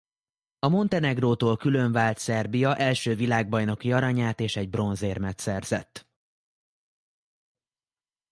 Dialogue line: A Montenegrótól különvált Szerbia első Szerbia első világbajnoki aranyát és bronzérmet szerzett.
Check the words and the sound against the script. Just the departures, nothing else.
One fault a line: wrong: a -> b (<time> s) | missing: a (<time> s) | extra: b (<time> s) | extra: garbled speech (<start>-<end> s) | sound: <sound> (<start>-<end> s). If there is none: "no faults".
missing: Szerbia első (3.1 s)
extra: egy (4.5 s)